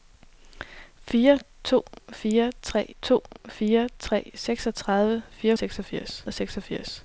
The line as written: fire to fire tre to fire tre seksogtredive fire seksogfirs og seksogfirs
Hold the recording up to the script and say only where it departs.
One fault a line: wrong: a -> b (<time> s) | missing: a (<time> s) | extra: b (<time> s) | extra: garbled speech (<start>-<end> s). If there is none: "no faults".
no faults